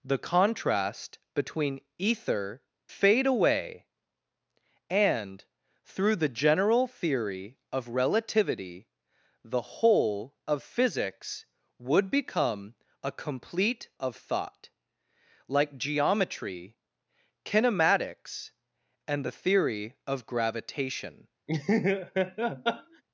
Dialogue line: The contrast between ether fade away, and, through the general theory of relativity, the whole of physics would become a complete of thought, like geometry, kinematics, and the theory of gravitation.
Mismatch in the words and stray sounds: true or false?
true